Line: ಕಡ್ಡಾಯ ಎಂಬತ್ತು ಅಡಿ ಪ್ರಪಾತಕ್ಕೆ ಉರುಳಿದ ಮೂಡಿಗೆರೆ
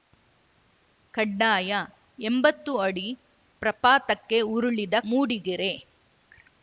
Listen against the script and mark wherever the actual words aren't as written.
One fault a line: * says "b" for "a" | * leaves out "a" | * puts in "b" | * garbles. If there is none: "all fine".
all fine